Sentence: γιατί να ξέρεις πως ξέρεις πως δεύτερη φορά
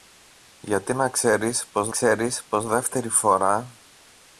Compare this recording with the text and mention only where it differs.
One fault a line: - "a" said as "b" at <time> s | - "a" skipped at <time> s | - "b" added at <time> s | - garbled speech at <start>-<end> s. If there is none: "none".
none